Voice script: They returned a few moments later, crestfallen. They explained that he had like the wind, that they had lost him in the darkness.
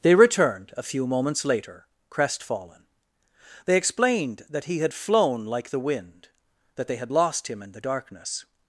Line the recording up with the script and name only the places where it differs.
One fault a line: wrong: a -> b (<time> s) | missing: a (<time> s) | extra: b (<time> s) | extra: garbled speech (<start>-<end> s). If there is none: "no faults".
extra: flown (4.9 s)